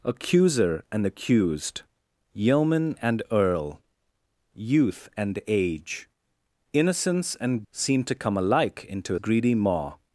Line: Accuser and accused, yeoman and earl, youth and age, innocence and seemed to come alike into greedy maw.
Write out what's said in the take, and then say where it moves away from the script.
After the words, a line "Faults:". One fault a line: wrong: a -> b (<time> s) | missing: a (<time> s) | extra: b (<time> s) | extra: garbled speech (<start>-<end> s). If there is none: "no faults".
Accuser and accused, yeoman and earl, youth and age, innocence and seemed to come alike into greedy maw.
Faults:
no faults